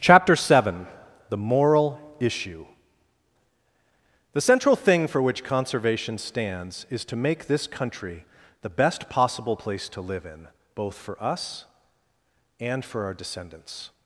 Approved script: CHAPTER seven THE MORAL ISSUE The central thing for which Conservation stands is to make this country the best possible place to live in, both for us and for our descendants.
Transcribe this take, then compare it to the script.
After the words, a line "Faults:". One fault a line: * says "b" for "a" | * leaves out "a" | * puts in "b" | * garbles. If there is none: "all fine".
CHAPTER seven THE MORAL ISSUE The central thing for which Conservation stands is to make this country the best possible place to live in, both for us and for our descendants.
Faults:
all fine